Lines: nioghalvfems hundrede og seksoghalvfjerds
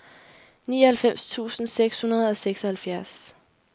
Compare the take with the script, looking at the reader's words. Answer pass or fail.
fail